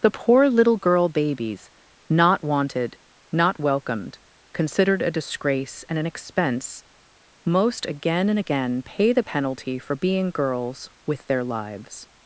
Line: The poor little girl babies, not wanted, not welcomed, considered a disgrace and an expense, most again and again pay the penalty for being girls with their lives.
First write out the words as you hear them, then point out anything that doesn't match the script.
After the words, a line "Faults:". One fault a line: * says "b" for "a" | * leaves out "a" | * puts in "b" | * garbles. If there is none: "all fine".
The poor little girl babies, not wanted, not welcomed, considered a disgrace and an expense, most again and again pay the penalty for being girls with their lives.
Faults:
all fine